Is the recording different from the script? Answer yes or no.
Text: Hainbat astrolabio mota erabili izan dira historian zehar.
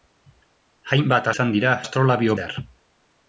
yes